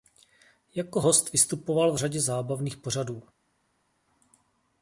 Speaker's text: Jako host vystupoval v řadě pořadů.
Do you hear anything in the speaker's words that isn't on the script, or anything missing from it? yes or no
yes